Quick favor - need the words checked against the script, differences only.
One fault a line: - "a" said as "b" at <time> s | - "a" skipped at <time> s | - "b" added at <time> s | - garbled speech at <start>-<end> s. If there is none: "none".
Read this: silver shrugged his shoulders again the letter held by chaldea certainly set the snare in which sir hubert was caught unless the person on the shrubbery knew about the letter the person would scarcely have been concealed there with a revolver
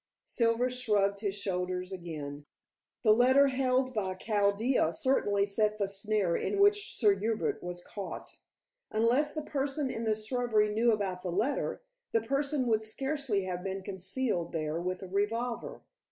- "on" said as "in" at 9.9 s